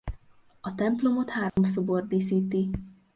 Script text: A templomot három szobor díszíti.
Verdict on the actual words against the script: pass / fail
pass